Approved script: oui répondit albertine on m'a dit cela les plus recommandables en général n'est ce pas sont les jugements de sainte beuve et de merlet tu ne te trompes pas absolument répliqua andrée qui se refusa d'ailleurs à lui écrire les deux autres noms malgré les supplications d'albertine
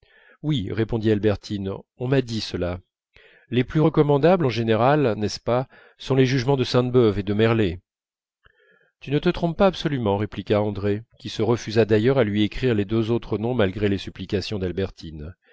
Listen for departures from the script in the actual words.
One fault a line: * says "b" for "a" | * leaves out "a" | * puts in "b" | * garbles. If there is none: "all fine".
all fine